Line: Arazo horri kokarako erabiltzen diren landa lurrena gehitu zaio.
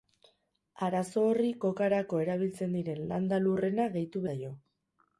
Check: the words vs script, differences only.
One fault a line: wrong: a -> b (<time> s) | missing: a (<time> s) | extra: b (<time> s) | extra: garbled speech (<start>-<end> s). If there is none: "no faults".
no faults